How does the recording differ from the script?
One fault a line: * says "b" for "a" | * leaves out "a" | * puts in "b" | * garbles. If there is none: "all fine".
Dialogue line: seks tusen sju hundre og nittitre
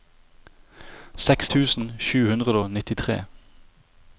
all fine